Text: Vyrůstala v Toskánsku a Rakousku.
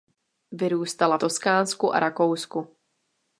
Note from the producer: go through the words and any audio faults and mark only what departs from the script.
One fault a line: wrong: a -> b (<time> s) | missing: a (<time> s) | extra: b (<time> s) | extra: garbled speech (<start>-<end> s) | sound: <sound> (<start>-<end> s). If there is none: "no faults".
missing: v (1.2 s)